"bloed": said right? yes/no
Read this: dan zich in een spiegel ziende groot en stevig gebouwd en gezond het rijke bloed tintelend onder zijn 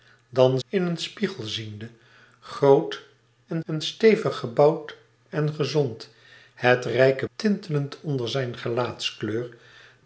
no